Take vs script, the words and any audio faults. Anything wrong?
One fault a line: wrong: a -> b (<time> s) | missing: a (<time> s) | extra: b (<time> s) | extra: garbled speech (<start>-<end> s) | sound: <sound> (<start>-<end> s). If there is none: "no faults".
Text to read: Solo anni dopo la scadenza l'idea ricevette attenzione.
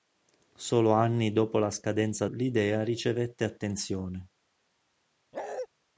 sound: bark (5.3-5.7 s)